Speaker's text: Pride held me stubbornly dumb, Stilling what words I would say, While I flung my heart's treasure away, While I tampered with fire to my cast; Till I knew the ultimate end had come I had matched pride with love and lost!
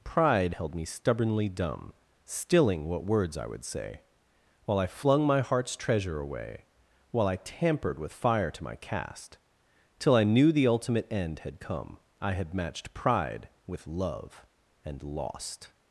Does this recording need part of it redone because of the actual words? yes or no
no